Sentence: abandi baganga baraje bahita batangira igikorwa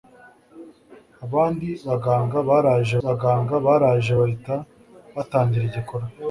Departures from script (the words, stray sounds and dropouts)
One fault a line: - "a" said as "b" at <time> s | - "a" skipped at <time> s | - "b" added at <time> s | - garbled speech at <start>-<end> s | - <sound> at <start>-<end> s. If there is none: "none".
- "baganga baraje" added at 3.0 s